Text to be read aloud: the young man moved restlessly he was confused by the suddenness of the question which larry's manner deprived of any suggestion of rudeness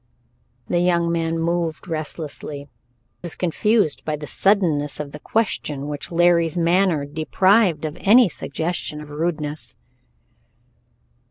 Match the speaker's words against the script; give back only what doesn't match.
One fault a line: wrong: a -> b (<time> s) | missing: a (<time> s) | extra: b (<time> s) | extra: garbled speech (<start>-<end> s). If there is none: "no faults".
missing: he (2.7 s)